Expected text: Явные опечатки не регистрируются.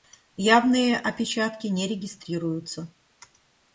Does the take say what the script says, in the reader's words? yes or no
yes